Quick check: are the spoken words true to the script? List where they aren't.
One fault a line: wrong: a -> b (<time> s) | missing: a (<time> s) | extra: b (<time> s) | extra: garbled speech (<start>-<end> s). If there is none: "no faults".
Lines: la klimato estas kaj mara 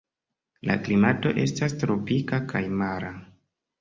extra: tropika (1.8 s)